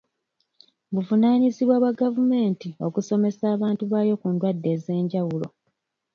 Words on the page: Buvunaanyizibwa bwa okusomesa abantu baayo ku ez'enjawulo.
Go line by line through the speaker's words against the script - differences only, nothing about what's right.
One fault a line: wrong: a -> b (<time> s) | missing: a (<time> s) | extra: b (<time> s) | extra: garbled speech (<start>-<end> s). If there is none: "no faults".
extra: gavumenti (2.0 s)
extra: ndwadde (4.3 s)